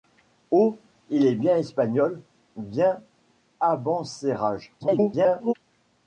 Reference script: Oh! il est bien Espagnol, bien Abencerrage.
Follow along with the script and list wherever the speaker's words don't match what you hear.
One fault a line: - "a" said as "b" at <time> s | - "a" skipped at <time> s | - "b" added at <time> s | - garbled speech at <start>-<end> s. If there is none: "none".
- garbled speech at 4.8-5.5 s